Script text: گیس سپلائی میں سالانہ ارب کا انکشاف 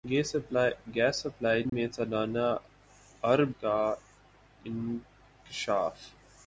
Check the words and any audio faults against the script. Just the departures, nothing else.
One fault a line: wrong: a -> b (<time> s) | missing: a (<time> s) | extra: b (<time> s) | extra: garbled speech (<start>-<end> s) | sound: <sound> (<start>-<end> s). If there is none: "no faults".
sound: dropout (1.7-1.7 s)